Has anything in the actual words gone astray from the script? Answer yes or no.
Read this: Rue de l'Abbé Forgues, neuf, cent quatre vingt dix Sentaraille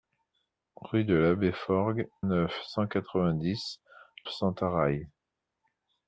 no